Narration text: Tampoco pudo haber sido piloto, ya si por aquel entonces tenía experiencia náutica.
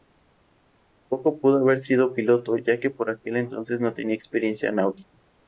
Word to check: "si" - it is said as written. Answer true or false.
false